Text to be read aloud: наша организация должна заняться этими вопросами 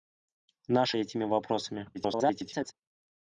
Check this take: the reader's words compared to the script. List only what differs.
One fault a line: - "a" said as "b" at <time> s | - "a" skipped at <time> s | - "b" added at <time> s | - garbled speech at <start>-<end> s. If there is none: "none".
- "организация должна заняться" skipped at 1.0 s
- garbled speech at 1.9-2.7 s